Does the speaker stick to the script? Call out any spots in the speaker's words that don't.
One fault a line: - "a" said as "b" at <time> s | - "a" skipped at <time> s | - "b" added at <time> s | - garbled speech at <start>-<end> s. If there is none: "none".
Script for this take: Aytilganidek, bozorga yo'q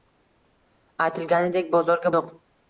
none